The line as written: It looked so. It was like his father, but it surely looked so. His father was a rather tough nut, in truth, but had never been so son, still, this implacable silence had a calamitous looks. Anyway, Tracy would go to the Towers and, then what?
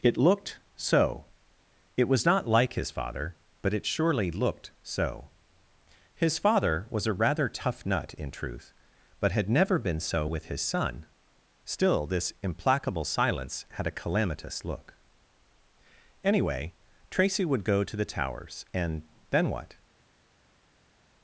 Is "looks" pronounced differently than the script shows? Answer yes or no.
yes